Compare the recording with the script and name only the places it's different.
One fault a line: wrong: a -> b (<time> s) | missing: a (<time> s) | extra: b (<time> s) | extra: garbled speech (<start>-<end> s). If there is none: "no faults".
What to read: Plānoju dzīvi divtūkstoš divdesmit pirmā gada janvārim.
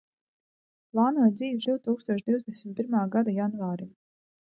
no faults